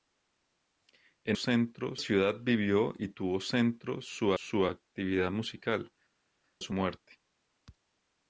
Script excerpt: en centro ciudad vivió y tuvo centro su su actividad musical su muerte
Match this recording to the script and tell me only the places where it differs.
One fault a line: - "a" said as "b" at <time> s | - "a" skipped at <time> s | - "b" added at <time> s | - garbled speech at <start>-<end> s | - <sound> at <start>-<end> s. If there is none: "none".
none